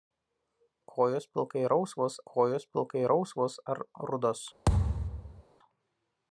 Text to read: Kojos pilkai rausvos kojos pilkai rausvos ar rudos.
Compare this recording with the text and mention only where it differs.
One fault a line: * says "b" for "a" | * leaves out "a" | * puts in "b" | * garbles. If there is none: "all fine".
all fine